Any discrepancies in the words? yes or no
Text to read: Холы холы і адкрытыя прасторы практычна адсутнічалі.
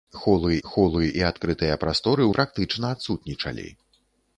no